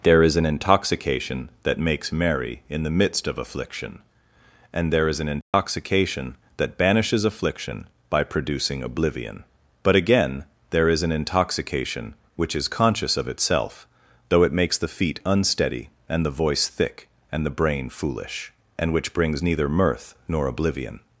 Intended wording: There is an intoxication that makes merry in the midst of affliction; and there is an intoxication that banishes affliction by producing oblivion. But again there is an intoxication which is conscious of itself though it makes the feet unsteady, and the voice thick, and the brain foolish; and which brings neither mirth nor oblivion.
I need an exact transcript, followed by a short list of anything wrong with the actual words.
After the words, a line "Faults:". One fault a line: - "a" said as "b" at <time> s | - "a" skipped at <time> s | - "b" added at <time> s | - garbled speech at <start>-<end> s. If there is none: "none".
There is an intoxication that makes merry in the midst of affliction; and there is an intoxication that banishes affliction by producing oblivion. But again there is an intoxication which is conscious of itself though it makes the feet unsteady, and the voice thick, and the brain foolish; and which brings neither mirth nor oblivion.
Faults:
none